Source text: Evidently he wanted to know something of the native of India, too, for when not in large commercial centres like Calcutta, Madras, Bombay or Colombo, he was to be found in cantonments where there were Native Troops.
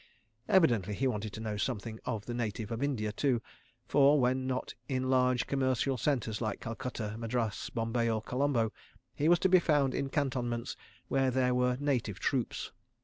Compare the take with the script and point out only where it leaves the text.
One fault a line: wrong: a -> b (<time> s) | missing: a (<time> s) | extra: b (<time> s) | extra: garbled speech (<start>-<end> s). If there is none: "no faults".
no faults